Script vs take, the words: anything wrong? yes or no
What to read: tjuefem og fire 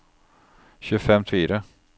no